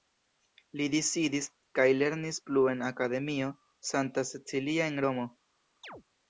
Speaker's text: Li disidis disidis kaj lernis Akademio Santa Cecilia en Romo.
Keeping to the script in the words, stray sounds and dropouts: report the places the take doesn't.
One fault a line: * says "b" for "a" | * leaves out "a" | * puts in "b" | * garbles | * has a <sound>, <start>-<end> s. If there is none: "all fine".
* leaves out "disidis"
* puts in "plu en"
* has a chirp, 5.8-6.0 s